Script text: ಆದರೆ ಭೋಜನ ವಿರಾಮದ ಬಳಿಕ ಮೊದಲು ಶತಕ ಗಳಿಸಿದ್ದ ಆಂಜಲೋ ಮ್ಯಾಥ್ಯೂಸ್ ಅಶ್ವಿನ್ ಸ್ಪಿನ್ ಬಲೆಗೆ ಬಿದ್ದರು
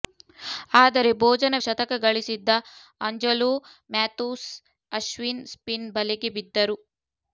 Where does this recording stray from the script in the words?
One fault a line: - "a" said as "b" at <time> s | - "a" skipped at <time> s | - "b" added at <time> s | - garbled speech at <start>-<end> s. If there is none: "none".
- "ವಿರಾಮದ ಬಳಿಕ ಮೊದಲು" skipped at 1.6 s